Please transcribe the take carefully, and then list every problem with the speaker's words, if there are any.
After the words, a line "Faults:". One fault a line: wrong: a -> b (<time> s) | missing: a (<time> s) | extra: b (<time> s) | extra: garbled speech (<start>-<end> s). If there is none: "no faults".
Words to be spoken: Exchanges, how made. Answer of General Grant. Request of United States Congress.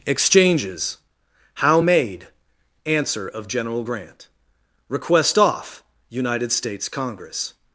Exchanges, how made. Answer of General Grant. Request off United States Congress.
Faults:
wrong: of -> off (5.4 s)